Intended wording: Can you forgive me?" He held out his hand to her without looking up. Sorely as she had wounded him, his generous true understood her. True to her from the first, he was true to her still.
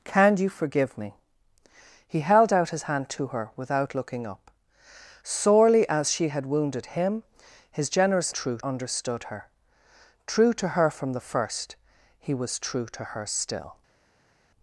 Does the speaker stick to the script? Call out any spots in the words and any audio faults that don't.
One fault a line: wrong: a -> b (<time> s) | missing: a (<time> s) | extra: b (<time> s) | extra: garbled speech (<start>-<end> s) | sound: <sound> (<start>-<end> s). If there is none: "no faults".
no faults